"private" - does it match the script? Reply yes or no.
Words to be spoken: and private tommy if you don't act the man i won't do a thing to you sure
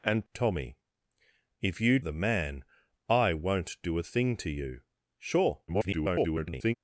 no